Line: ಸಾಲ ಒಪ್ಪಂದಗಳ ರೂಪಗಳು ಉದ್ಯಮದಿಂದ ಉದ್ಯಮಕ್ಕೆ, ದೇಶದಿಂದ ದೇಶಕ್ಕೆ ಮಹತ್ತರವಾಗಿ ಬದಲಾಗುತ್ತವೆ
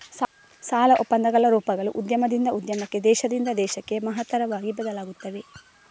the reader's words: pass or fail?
pass